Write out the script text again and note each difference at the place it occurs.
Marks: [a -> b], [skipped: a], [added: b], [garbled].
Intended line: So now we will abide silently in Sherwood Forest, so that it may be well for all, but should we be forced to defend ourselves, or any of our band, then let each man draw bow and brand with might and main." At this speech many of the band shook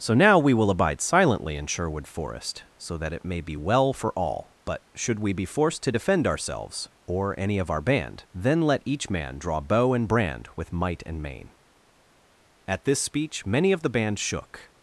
So now we will abide silently in Sherwood Forest, so that it may be well for all, but should we be forced to defend ourselves, or any of our band, then let each man draw bow and brand with might and main." At this speech many of the band shook